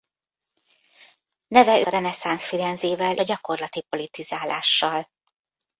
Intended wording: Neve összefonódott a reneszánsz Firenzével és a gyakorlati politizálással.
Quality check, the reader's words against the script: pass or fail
fail